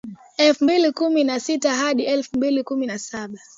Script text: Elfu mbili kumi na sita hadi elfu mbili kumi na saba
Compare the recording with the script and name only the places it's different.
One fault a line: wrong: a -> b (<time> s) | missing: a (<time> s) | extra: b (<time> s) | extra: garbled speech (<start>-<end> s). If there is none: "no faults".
no faults